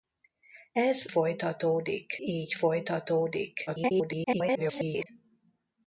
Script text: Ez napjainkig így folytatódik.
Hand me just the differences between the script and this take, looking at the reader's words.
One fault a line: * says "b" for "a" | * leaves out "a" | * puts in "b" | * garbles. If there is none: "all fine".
* says "folytatódik" for "napjainkig"
* garbles